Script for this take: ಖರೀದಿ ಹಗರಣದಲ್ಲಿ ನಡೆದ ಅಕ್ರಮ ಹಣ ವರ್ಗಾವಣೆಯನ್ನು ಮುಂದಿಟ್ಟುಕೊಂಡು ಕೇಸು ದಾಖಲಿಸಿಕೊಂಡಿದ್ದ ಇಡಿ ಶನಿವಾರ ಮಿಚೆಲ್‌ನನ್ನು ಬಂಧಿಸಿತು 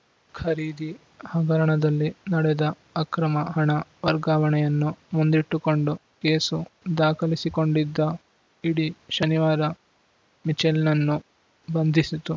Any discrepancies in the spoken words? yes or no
no